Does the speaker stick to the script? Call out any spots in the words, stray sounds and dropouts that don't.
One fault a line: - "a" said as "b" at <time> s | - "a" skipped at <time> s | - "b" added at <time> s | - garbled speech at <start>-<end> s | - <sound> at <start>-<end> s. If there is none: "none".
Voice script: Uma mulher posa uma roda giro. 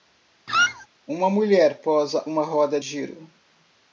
- squeak at 0.5-0.9 s